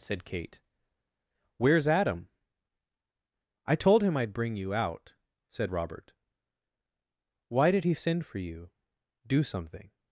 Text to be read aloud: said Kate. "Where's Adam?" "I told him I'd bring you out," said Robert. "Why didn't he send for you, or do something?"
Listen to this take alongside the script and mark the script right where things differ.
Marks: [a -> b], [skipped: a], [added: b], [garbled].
said Kate. "Where's Adam?" "I told him I'd bring you out," said Robert. "Why [didn't -> did] he send for you, [skipped: or] do something?"